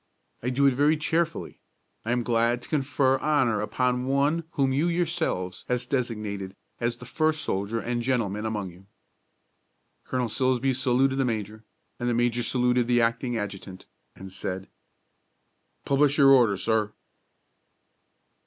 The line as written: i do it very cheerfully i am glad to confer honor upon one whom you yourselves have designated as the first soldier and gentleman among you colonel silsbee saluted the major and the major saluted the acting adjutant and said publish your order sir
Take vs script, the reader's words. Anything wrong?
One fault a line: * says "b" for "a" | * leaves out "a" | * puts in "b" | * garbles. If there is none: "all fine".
all fine